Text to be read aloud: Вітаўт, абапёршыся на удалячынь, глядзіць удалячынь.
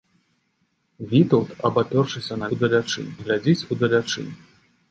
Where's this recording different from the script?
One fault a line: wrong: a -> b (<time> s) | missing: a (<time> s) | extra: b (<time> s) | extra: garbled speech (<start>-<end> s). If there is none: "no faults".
no faults